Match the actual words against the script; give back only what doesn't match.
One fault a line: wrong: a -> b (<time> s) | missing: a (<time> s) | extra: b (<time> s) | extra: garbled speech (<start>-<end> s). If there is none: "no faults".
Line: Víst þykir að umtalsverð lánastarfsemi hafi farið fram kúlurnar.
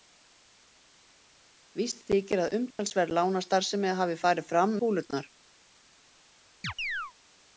no faults